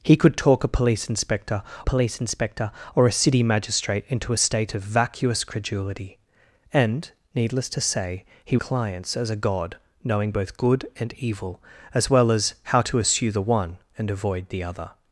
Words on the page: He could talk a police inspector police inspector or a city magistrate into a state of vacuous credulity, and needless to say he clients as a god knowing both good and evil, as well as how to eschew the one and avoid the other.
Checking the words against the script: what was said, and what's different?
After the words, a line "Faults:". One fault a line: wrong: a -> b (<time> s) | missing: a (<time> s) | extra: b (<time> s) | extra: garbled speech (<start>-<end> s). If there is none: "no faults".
He could talk a police inspector police inspector or a city magistrate into a state of vacuous credulity, and needless to say he clients as a god knowing both good and evil, as well as how to eschew the one and avoid the other.
Faults:
no faults